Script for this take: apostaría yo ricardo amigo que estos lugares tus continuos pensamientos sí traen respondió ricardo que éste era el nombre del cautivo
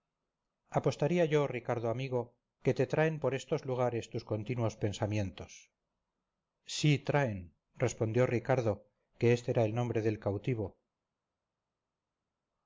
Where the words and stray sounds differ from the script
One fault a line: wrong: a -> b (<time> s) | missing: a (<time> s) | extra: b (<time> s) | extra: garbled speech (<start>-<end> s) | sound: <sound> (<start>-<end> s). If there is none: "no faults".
extra: te traen por (2.7 s)